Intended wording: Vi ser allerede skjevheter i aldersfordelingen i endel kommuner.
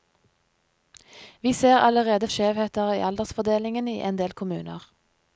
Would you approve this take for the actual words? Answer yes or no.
yes